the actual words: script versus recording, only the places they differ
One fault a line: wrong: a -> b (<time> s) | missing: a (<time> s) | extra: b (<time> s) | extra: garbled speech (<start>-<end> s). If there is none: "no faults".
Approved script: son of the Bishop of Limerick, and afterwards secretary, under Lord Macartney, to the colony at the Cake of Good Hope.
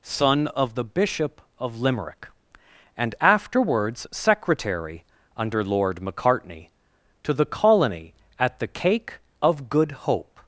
no faults